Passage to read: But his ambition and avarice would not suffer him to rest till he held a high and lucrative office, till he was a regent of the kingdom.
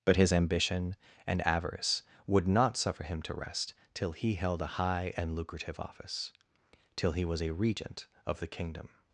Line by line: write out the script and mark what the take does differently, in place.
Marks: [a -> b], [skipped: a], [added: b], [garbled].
But his ambition and avarice would not suffer him to rest till he held a high and lucrative office, till he was a regent of the kingdom.